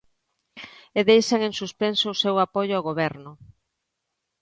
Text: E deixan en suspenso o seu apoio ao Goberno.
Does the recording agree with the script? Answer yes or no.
yes